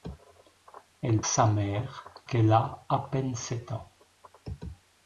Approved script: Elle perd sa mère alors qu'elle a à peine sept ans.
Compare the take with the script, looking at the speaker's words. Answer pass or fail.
fail